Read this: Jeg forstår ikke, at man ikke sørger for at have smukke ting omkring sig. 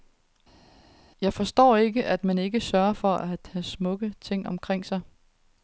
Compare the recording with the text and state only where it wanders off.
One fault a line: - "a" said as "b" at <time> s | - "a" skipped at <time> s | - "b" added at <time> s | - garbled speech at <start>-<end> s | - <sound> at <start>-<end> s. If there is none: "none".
none